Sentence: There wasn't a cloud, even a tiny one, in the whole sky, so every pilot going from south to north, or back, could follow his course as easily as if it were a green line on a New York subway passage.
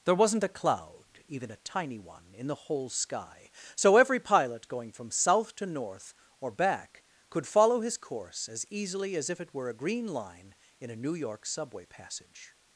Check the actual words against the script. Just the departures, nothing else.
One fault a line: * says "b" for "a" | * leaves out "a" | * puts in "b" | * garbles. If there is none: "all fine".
* says "in" for "on"